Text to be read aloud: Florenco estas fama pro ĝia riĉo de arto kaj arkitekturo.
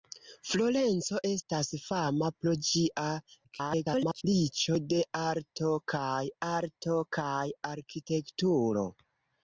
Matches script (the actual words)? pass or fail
fail